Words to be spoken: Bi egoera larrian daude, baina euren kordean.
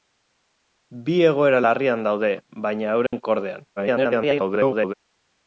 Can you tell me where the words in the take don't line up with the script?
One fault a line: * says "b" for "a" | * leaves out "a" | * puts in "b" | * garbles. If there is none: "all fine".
* garbles